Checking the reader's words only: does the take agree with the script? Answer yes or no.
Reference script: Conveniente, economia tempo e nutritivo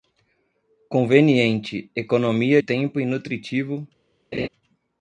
yes